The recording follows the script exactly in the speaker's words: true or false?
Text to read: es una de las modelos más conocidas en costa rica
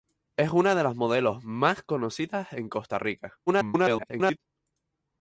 false